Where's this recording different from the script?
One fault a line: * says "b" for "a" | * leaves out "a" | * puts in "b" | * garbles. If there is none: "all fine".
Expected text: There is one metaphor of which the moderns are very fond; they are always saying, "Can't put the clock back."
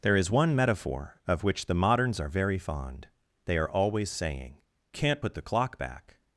all fine